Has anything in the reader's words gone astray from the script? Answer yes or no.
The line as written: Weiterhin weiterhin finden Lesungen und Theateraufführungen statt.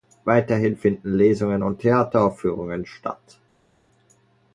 yes